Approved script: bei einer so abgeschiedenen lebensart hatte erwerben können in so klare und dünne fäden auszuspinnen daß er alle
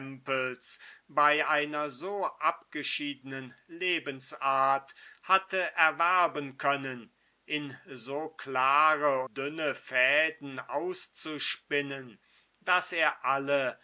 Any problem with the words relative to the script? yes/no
yes